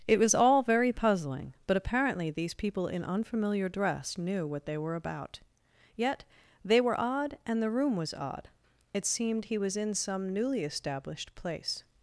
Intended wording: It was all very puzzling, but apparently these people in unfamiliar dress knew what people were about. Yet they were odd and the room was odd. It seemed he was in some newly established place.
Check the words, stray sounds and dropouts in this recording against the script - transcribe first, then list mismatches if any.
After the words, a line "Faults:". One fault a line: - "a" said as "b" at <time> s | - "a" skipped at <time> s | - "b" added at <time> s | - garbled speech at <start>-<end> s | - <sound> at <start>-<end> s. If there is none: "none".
It was all very puzzling, but apparently these people in unfamiliar dress knew what they were about. Yet they were odd and the room was odd. It seemed he was in some newly established place.
Faults:
- "people" said as "they" at 4.7 s